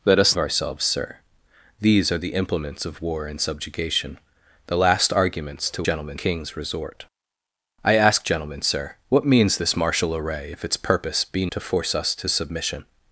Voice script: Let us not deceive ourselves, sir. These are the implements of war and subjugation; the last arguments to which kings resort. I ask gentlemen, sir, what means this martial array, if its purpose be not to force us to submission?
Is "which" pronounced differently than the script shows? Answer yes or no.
yes